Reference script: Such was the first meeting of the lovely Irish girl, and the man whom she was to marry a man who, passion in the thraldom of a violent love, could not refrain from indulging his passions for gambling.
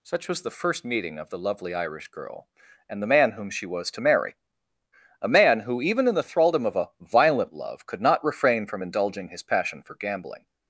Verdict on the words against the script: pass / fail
fail